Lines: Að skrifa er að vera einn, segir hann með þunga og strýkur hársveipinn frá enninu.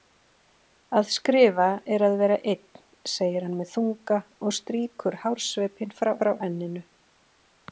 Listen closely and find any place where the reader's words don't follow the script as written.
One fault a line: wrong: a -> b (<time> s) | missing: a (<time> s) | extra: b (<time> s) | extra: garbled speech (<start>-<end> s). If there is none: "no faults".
extra: frá (6.2 s)